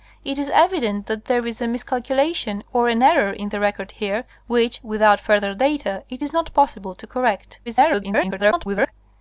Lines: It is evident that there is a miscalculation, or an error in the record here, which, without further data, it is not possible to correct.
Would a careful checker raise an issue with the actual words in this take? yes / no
yes